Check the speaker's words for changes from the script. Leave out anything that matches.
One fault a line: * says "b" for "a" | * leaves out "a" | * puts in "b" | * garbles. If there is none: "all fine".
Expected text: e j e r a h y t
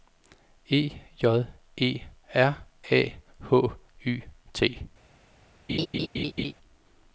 all fine